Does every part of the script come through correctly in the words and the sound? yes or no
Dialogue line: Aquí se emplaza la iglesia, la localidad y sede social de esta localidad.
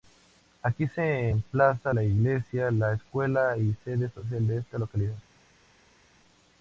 no